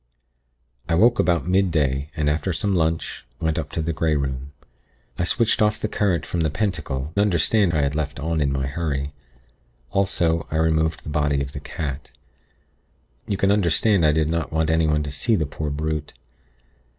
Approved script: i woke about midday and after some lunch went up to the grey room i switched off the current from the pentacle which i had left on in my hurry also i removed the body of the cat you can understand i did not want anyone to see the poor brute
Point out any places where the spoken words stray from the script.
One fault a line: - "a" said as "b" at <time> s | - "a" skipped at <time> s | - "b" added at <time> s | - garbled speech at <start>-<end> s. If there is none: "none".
- "which" said as "understand" at 7.2 s